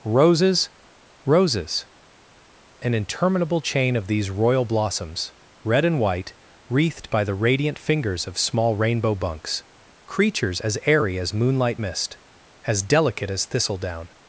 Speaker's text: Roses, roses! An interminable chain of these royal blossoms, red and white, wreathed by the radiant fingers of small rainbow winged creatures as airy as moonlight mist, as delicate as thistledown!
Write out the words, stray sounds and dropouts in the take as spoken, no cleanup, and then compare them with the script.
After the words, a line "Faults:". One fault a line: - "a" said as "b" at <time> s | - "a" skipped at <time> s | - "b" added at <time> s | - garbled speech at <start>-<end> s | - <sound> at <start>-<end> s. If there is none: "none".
Roses, roses! An interminable chain of these royal blossoms, red and white, wreathed by the radiant fingers of small rainbow bunks creatures as airy as moonlight mist, as delicate as thistledown!
Faults:
- "winged" said as "bunks" at 9.1 s